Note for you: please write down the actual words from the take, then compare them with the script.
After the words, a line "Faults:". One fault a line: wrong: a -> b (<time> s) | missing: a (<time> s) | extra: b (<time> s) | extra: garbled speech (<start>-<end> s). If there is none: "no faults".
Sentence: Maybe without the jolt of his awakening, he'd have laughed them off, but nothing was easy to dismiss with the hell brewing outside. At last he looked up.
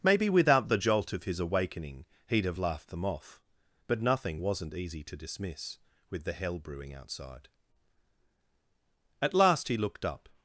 Maybe without the jolt of his awakening, he'd have laughed them off, but nothing wasn't easy to dismiss with the hell brewing outside. At last he looked up.
Faults:
wrong: was -> wasn't (4.4 s)